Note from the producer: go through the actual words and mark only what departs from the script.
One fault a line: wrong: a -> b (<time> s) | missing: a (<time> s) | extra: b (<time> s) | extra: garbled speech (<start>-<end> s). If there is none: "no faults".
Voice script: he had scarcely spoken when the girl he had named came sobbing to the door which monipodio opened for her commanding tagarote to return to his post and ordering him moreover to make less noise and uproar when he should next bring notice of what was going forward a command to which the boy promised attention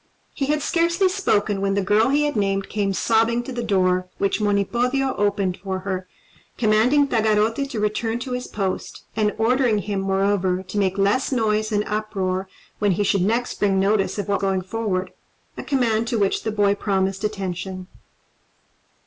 missing: was (14.4 s)